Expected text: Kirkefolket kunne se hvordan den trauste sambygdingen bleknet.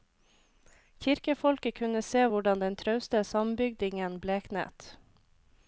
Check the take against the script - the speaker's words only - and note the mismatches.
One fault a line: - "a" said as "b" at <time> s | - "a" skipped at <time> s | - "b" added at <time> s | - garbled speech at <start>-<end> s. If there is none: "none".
none